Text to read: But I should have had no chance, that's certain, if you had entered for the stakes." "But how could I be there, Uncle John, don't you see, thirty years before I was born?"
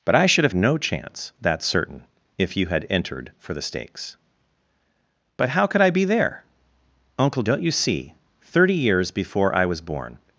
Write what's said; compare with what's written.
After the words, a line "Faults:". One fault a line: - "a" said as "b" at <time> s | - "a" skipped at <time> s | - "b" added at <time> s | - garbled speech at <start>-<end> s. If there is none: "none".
But I should have no chance, that's certain, if you had entered for the stakes." "But how could I be there, Uncle Don't you see, thirty years before I was born?"
Faults:
- "had" skipped at 0.5 s
- "John" skipped at 7.4 s